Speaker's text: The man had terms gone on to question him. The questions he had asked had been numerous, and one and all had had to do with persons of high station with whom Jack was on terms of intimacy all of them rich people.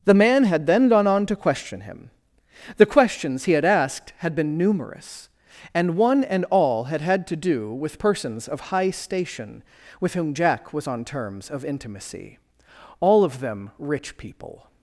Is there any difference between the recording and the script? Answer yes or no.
yes